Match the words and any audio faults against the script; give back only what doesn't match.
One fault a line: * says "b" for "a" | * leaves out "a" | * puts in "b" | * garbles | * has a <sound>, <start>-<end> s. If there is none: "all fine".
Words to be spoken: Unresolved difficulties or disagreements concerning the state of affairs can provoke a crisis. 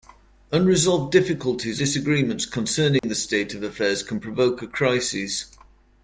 * leaves out "or"
* has a dropout, 3.0-3.0 s